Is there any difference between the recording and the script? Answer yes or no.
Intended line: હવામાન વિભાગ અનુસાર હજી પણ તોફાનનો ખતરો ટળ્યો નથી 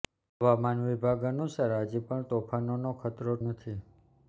yes